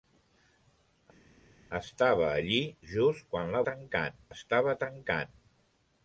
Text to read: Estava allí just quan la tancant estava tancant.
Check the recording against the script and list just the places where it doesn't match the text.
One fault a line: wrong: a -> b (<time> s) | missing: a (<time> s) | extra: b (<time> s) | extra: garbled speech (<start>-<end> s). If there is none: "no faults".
no faults